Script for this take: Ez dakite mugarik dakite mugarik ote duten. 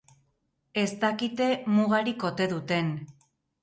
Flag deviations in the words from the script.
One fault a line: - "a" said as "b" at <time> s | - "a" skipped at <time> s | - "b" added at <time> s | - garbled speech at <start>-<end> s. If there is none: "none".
- "dakite mugarik" skipped at 2.3 s